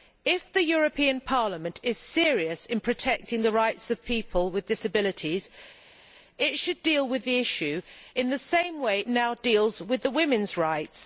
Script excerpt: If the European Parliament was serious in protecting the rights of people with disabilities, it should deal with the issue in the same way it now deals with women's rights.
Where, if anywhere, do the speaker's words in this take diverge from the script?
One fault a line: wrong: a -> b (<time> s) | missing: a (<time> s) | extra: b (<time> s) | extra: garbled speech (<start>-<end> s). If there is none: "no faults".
wrong: was -> is (1.8 s)